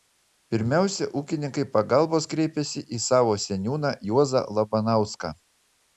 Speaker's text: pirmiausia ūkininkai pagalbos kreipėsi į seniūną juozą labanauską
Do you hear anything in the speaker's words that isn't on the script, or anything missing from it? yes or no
yes